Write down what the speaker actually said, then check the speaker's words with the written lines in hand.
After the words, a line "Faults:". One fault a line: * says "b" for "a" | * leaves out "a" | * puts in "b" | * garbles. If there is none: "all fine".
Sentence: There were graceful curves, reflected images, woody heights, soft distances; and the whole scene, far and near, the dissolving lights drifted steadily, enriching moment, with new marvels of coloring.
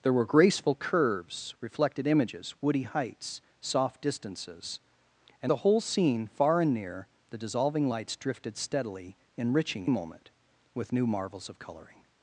There were graceful curves, reflected images, woody heights, soft distances; and the whole scene, far and near, the dissolving lights drifted steadily, enriching moment, with new marvels of coloring.
Faults:
all fine